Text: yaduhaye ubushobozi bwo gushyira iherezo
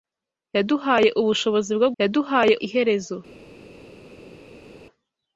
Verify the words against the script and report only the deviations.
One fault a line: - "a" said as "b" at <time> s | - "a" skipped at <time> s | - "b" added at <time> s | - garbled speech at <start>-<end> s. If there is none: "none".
- "gushyira" said as "yaduhaye" at 2.0 s